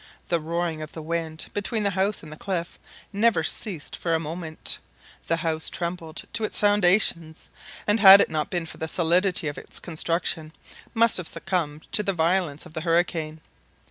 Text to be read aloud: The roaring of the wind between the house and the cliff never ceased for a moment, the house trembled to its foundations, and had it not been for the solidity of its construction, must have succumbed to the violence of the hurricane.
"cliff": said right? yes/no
yes